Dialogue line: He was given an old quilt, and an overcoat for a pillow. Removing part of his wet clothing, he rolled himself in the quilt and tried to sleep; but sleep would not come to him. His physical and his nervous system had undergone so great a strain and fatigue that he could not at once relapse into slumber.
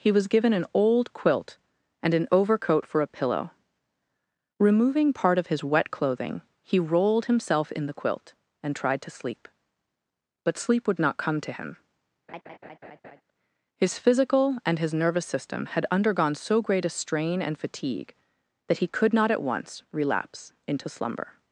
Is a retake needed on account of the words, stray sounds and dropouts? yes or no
yes